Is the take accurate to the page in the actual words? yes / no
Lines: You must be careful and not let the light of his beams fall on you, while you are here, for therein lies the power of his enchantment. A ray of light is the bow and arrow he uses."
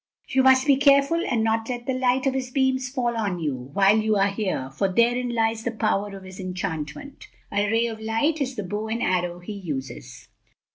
yes